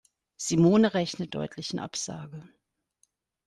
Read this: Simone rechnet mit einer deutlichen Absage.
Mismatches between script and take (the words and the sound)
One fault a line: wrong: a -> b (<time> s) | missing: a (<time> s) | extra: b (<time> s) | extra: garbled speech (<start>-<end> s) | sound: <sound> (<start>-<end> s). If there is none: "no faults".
missing: mit einer (1.3 s)